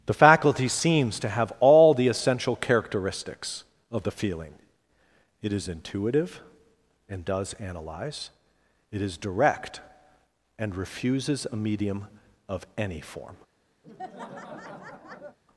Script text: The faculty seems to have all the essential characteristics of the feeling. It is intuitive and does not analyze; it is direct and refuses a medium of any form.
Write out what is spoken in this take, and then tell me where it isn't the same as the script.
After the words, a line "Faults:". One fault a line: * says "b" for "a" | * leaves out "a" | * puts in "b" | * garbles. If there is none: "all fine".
The faculty seems to have all the essential characteristics of the feeling. It is intuitive and does analyze; it is direct and refuses a medium of any form.
Faults:
* leaves out "not"